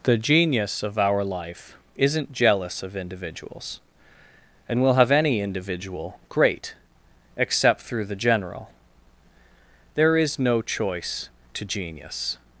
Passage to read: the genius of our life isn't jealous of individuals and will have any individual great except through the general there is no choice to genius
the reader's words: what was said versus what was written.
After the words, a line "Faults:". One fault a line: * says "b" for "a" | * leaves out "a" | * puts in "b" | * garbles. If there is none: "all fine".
the genius of our life isn't jealous of individuals and will have any individual great except through the general there is no choice to genius
Faults:
all fine